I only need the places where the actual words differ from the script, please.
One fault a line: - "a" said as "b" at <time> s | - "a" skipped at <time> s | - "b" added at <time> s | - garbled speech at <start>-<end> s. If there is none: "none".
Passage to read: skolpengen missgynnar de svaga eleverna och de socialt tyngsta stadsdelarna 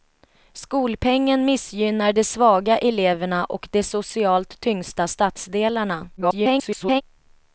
- garbled speech at 6.2-7.0 s